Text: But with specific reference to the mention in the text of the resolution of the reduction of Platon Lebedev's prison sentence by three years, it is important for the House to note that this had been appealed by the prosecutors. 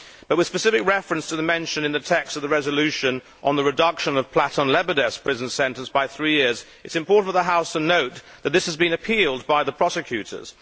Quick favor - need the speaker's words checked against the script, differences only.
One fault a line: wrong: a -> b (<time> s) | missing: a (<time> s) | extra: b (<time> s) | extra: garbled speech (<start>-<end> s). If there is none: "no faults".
wrong: had -> has (8.7 s)